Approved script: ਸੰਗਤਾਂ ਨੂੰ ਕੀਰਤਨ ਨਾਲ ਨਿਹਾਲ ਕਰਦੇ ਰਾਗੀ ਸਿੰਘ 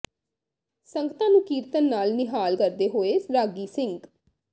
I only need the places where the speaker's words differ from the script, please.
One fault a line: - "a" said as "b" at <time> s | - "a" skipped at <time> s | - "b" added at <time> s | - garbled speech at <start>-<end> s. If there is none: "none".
- "ਹੋਏ" added at 2.9 s